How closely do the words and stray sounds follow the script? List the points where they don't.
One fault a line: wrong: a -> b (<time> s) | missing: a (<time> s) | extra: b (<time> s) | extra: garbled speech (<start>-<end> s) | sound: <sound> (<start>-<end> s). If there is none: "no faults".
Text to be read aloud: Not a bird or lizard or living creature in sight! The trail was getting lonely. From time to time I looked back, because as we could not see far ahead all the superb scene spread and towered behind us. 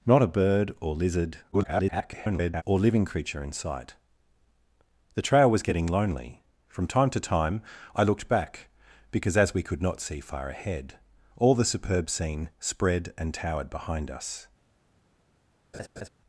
extra: garbled speech (1.5-2.6 s)
sound: laugh (15.7-16.1 s)